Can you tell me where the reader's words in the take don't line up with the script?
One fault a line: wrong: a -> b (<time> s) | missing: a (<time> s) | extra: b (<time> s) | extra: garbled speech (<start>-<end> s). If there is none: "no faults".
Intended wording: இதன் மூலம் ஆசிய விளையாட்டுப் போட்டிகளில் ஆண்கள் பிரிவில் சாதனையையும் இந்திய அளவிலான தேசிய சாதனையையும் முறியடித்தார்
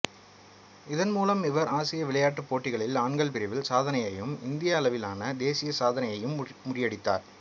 extra: இவர் (1.4 s)